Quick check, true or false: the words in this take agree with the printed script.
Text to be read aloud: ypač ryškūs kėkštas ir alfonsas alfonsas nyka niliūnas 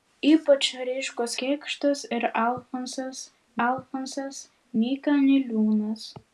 true